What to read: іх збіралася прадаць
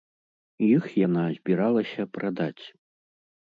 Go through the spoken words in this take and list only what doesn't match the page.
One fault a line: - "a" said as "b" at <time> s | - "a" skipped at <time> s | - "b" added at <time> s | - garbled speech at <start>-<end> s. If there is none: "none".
- "яна" added at 1.1 s